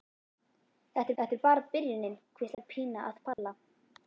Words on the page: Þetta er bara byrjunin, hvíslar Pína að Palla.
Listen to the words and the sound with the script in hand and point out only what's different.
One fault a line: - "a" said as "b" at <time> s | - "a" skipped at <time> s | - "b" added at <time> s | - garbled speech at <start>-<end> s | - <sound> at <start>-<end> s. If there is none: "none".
- "þetta" added at 1.2 s
- dropout at 2.5-2.6 s
- dropout at 3.3-3.4 s